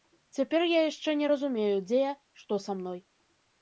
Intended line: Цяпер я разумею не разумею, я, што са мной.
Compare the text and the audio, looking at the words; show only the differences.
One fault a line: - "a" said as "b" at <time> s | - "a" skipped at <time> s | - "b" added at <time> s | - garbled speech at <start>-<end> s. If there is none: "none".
- "разумею" said as "яшчэ" at 0.9 s
- "дзе" added at 1.9 s